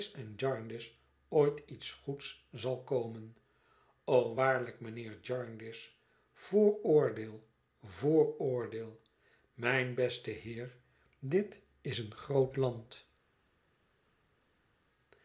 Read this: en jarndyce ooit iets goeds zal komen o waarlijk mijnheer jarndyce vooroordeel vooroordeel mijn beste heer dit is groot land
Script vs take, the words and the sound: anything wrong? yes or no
yes